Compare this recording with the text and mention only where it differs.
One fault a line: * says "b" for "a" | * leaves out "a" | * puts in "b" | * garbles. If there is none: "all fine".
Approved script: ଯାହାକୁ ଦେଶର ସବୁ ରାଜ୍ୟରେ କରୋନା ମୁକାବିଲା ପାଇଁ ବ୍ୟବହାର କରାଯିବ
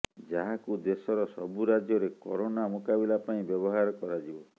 all fine